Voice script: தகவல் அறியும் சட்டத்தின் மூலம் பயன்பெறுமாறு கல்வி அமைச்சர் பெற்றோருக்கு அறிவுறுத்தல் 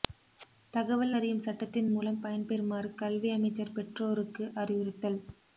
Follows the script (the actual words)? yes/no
yes